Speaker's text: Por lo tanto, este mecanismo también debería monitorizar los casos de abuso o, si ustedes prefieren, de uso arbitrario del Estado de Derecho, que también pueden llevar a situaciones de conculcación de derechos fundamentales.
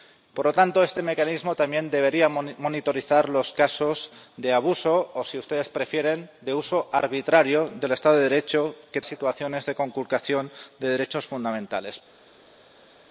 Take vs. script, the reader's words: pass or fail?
fail